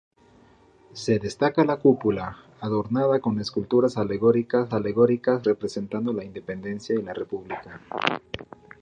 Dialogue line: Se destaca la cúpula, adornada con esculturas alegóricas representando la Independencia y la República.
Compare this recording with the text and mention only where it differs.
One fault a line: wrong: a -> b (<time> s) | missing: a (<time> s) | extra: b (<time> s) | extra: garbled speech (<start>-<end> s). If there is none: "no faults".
extra: alegóricas (4.7 s)